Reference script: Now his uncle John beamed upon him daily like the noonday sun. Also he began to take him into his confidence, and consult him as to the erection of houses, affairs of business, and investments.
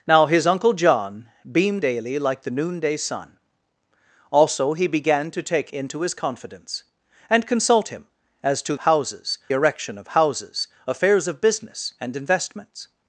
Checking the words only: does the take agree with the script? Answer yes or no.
no